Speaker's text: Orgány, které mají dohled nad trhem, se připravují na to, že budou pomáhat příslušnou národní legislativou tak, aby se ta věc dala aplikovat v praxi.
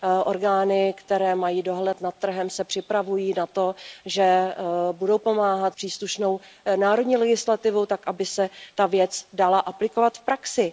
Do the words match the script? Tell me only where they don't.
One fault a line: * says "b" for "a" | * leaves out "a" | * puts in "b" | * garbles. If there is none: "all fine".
all fine